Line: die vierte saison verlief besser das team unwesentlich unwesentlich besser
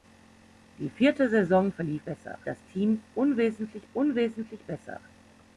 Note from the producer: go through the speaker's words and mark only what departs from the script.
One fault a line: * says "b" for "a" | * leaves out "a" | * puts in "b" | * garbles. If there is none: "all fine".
all fine